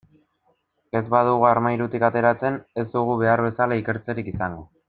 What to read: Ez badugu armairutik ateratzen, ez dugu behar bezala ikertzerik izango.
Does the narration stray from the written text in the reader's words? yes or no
no